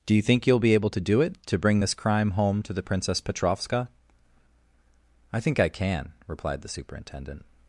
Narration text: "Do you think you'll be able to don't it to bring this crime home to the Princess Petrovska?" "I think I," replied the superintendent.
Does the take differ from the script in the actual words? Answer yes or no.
yes